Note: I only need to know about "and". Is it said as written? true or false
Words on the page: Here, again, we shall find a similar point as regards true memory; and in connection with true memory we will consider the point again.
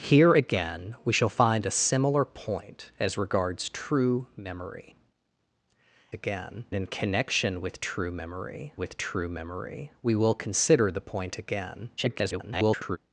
false